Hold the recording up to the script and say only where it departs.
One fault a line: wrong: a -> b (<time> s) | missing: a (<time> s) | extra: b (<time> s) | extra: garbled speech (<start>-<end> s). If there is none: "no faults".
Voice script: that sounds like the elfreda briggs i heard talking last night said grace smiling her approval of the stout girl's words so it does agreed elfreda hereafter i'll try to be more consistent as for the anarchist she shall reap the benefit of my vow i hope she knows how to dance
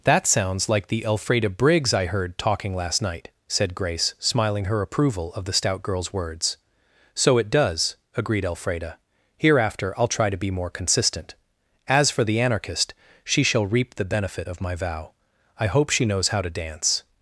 no faults